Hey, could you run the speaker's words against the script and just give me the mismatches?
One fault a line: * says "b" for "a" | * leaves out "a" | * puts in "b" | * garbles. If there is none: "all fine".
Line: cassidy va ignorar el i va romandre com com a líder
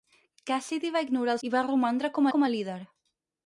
all fine